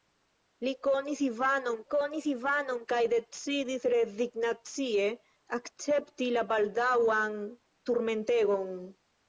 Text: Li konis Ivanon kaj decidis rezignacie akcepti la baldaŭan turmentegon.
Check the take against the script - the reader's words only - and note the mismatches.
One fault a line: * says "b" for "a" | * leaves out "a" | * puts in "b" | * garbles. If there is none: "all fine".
* puts in "konis Ivanon"